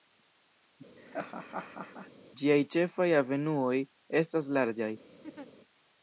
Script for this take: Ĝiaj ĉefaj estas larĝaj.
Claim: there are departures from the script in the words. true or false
true